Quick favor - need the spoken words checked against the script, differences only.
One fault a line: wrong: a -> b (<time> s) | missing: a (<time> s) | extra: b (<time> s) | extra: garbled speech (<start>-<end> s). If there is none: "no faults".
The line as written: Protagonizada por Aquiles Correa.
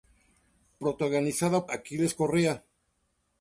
missing: por (1.7 s)